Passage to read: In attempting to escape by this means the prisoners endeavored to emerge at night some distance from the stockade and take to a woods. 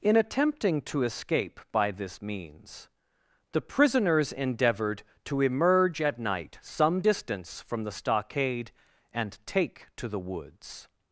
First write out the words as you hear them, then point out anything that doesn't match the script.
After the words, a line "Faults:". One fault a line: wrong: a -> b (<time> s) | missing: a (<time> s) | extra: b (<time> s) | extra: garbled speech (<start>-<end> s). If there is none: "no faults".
In attempting to escape by this means the prisoners endeavored to emerge at night some distance from the stockade and take to the woods.
Faults:
wrong: a -> the (10.1 s)